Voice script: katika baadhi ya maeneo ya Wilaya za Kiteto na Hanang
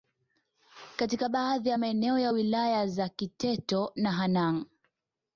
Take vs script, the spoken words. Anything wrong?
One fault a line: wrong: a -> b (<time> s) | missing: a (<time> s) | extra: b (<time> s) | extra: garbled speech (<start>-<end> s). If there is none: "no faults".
no faults